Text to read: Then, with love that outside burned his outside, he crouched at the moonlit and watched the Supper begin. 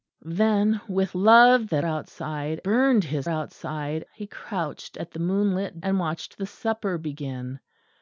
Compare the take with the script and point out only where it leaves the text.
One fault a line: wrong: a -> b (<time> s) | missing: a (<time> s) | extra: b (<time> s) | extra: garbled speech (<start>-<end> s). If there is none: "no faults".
no faults